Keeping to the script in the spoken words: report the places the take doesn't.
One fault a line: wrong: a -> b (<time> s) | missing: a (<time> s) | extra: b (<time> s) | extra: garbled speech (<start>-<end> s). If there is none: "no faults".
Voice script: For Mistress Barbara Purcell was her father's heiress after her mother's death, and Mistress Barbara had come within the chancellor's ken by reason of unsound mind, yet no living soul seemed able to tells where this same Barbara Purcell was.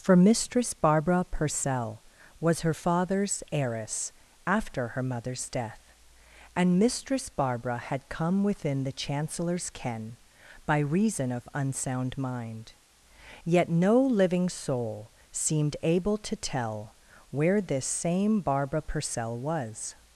wrong: tells -> tell (16.3 s)